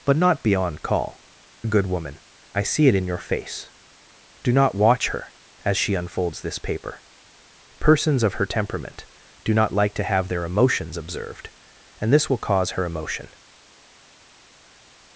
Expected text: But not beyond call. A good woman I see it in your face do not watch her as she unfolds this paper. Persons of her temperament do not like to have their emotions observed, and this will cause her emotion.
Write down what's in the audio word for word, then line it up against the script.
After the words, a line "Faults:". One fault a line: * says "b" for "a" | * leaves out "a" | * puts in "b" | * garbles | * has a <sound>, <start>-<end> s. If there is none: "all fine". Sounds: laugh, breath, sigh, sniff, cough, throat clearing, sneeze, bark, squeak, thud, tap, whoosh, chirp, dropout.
But not beyond call. A good woman I see it in your face do not watch her as she unfolds this paper. Persons of her temperament do not like to have their emotions observed, and this will cause her emotion.
Faults:
all fine